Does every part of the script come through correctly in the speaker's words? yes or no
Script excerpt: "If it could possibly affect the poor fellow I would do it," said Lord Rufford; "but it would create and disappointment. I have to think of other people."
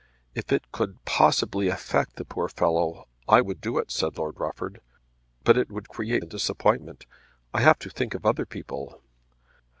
yes